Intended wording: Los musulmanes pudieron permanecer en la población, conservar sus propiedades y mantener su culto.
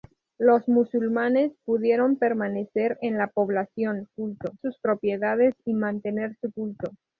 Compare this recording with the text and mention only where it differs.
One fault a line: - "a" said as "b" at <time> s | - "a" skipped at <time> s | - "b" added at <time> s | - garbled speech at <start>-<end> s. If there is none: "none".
- "conservar" said as "culto" at 4.1 s